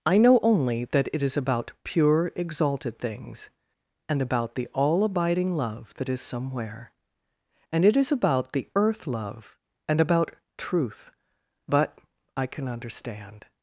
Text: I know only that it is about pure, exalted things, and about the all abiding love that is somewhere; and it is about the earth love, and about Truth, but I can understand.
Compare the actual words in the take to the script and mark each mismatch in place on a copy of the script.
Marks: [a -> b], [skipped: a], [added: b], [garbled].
I know only that it is about pure, exalted things, and about the all abiding love that is somewhere; and it is about the earth love, and about Truth, but I can understand.